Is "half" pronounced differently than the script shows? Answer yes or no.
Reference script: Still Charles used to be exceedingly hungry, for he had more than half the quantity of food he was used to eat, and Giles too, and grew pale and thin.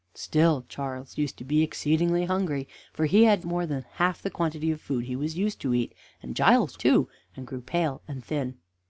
no